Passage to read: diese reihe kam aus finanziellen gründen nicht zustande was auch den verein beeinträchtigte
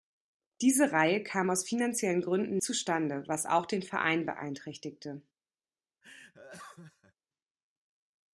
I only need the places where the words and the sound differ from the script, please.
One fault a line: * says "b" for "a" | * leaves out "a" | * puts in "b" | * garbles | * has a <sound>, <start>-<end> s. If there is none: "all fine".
* leaves out "nicht"
* has a laugh, 6.0-7.1 s